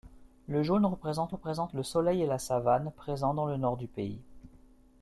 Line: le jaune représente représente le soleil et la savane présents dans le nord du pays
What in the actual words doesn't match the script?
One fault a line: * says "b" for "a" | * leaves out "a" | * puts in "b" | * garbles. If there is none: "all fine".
all fine